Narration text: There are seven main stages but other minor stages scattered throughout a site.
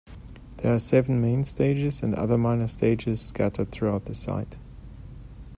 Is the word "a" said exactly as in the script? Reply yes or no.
no